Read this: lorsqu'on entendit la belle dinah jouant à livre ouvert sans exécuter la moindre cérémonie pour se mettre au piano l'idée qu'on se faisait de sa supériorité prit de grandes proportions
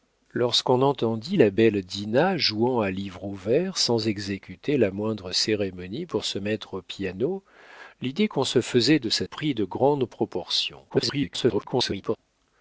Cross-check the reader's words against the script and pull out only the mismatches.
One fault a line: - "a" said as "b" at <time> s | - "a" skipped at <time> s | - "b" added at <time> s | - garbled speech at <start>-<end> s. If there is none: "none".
- "supériorité" skipped at 9.3 s
- garbled speech at 10.9-12.2 s